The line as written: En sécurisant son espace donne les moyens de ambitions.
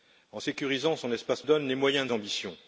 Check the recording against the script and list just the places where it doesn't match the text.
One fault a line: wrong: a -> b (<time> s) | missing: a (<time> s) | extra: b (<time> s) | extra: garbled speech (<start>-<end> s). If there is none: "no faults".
no faults